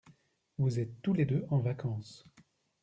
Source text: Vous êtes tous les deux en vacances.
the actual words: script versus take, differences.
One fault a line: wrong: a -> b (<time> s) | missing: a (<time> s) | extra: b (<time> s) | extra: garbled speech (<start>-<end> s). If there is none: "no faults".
no faults